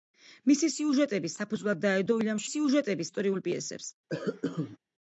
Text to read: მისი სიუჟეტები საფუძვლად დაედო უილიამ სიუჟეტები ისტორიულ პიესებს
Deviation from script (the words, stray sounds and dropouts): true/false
true